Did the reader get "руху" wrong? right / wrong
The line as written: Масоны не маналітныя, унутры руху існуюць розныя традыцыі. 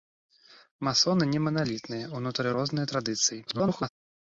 wrong